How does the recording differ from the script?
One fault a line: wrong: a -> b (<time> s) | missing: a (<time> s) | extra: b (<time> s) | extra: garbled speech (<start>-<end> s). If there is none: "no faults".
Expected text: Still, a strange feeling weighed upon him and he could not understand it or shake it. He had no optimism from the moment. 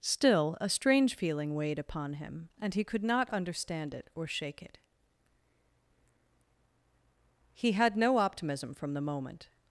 no faults